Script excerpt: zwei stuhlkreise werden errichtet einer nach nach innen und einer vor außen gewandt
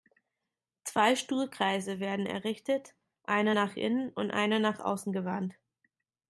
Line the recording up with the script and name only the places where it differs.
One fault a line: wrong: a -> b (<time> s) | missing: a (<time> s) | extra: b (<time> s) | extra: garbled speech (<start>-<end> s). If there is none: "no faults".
missing: nach (3.7 s)
wrong: vor -> nach (4.6 s)